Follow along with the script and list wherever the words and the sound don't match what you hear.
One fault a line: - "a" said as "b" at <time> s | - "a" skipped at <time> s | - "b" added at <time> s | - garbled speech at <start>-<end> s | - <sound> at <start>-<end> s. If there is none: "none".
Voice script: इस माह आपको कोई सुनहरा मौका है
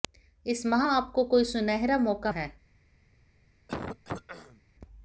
- throat clearing at 3.7-4.6 s